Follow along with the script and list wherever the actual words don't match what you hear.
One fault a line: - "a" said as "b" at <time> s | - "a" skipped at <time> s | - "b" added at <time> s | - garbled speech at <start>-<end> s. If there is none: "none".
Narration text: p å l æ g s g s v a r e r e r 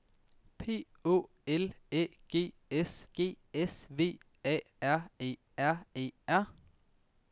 none